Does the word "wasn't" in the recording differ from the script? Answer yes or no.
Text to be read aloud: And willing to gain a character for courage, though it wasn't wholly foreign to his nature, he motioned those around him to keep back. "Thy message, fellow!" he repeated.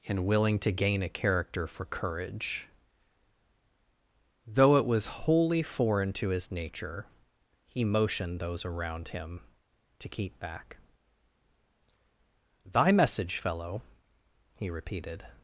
yes